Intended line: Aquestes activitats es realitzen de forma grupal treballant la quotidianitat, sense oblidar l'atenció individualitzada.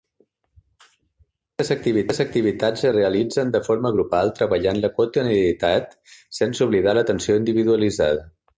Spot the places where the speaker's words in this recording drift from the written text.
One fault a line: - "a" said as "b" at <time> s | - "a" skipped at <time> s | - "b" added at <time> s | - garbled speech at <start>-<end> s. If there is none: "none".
none